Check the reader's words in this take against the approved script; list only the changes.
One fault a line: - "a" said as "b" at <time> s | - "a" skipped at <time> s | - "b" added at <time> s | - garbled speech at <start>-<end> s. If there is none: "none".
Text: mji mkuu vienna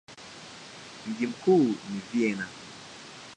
- "ni" added at 1.9 s